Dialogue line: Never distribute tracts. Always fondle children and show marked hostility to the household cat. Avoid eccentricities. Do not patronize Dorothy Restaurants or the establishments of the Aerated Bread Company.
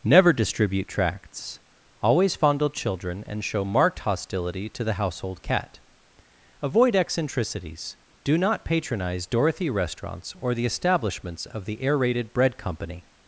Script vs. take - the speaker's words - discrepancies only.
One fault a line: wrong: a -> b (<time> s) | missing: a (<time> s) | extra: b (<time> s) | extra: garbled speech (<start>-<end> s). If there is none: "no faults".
no faults